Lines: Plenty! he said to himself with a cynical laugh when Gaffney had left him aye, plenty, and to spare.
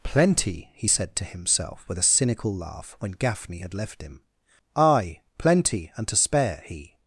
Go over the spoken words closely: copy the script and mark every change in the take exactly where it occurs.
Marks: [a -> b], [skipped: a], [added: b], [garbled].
Plenty! he said to himself with a cynical laugh when Gaffney had left him aye, plenty, and to spare. [added: He]